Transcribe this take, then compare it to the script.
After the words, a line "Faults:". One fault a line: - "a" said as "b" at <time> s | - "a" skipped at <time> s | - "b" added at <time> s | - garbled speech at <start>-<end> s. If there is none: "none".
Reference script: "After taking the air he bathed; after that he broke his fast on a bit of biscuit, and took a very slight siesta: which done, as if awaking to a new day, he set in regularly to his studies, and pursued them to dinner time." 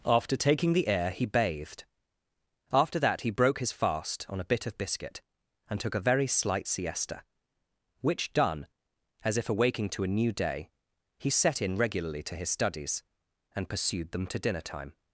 "After taking the air he bathed; after that he broke his fast on a bit of biscuit, and took a very slight siesta: which done, as if awaking to a new day, he set in regularly to his studies, and pursued them to dinner time."
Faults:
none